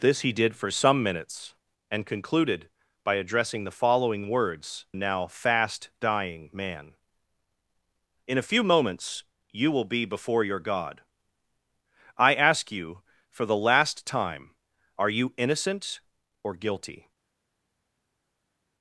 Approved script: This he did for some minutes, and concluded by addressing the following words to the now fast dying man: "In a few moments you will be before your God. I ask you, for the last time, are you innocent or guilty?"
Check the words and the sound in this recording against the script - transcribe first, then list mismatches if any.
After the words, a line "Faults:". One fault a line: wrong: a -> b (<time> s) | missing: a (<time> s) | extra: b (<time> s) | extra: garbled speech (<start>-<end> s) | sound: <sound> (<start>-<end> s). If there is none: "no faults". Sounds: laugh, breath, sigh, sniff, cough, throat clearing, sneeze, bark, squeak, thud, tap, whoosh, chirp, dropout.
This he did for some minutes, and concluded by addressing the following words now fast dying man: "In a few moments you will be before your God. I ask you, for the last time, are you innocent or guilty?"
Faults:
missing: to the (4.9 s)